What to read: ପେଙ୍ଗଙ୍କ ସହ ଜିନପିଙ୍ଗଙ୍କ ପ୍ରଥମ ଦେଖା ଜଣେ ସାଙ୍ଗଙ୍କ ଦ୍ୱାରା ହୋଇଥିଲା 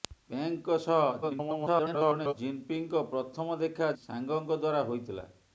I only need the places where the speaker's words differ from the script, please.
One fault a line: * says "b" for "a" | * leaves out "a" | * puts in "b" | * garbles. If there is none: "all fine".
* garbles
* leaves out "ଜଣେ"